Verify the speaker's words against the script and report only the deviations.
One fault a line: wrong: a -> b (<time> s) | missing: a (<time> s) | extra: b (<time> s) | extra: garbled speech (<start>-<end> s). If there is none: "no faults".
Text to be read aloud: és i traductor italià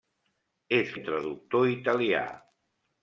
no faults